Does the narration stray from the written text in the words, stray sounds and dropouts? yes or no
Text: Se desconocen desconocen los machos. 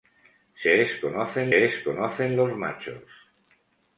no